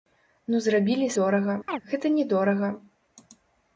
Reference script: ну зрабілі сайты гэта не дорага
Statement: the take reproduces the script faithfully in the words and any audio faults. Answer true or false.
false